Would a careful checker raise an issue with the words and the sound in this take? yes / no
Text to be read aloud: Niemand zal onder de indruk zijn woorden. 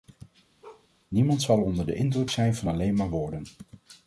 yes